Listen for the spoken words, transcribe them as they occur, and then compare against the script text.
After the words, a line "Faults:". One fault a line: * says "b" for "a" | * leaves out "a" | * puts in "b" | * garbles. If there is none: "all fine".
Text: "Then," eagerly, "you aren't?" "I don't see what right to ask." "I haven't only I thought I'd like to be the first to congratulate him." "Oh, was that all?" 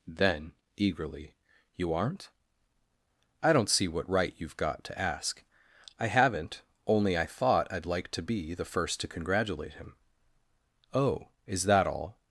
"Then," eagerly, "you aren't?" "I don't see what right you've got to ask." "I haven't only I thought I'd like to be the first to congratulate him." "Oh, is that all?"
Faults:
* puts in "you've got"
* says "is" for "was"